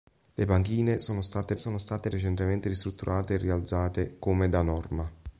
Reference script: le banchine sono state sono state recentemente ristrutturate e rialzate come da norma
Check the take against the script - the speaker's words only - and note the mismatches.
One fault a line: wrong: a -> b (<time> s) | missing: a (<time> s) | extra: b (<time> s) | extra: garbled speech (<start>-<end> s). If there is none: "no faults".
no faults